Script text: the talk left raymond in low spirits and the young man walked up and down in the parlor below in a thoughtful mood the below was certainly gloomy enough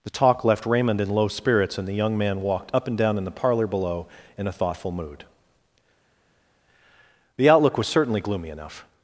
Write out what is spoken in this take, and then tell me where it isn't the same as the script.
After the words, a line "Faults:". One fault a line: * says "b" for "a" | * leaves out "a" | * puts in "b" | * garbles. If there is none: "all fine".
the talk left raymond in low spirits and the young man walked up and down in the parlor below in a thoughtful mood the outlook was certainly gloomy enough
Faults:
* says "outlook" for "below"